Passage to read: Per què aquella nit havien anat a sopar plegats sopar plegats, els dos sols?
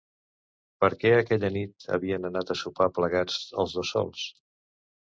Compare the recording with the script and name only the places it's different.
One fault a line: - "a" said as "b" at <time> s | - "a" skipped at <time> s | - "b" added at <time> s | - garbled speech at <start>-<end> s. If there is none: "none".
- "sopar plegats" skipped at 3.4 s